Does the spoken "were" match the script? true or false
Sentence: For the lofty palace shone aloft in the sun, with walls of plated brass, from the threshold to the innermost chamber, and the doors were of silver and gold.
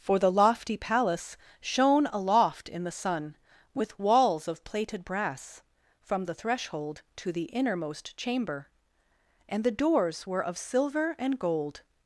true